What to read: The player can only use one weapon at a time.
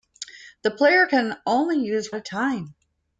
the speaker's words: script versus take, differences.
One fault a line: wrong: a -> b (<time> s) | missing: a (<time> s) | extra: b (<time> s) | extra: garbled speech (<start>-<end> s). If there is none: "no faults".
missing: one weapon at (2.1 s)